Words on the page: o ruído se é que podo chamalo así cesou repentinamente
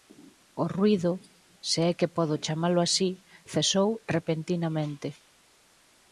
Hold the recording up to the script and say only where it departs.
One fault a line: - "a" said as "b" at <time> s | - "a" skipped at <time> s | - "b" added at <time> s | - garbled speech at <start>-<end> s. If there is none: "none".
none